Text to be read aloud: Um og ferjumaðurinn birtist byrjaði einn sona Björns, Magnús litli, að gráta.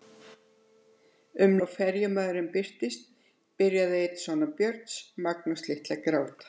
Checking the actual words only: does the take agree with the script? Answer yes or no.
yes